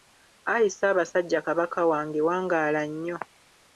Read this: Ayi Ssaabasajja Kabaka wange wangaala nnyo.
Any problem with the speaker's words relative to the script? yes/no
no